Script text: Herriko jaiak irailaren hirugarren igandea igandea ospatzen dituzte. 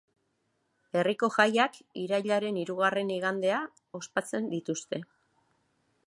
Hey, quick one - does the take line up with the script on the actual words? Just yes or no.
no